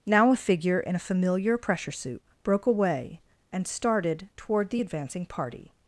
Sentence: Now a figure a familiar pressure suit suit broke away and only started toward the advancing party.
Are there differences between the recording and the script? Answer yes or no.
yes